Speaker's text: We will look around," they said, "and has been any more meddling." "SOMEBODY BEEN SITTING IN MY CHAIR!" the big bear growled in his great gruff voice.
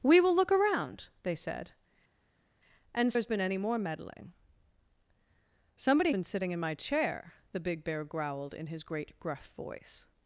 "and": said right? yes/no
yes